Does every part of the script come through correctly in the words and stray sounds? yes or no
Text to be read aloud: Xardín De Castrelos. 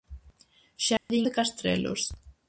no